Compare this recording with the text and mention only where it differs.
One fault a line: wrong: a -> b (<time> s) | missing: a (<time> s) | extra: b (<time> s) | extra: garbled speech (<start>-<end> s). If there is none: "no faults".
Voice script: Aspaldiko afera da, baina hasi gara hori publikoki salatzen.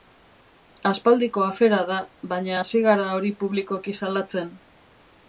no faults